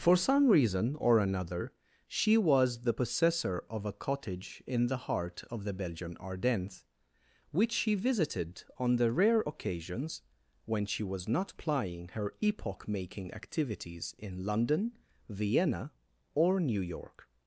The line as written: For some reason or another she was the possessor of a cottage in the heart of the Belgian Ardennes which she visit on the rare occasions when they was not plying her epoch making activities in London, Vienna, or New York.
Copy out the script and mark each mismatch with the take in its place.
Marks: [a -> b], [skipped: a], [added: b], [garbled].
For some reason or another she was the possessor of a cottage in the heart of the Belgian Ardennes which she [visit -> visited] on the rare occasions when [they -> she] was not plying her epoch making activities in London, Vienna, or New York.